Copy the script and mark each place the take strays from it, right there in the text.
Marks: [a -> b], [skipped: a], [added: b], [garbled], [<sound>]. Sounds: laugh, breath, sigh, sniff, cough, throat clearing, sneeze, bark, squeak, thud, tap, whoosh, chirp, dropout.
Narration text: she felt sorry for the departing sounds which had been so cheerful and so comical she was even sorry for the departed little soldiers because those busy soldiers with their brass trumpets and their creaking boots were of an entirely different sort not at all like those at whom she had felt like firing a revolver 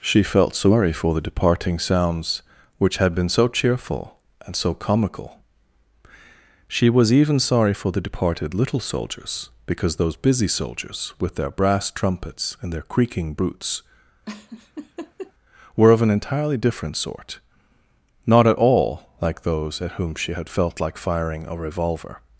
she felt sorry for the departing sounds which had been so cheerful and so comical she was even sorry for the departed little soldiers because those busy soldiers with their brass trumpets and their creaking boots [laugh] were of an entirely different sort not at all like those at whom she had felt like firing a revolver